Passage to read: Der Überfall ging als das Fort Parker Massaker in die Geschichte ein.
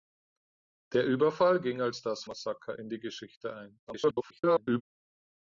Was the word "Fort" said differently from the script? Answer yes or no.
yes